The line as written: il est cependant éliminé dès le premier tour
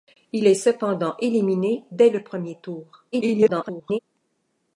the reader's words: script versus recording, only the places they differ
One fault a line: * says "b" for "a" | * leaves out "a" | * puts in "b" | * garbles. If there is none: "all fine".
* garbles